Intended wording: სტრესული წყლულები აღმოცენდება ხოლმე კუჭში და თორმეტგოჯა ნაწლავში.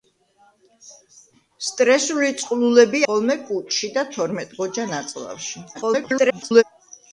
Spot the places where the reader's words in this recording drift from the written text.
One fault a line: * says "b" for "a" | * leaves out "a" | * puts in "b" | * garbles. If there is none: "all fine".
* leaves out "აღმოცენდება"
* garbles